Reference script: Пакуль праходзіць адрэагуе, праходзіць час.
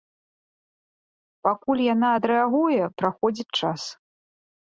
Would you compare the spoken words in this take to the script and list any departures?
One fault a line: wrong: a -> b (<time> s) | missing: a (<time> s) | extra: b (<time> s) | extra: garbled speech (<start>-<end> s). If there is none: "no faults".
wrong: праходзіць -> яна (1.9 s)